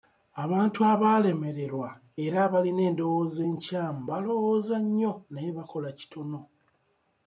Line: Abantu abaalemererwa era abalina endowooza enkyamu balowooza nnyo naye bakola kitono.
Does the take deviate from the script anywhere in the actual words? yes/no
no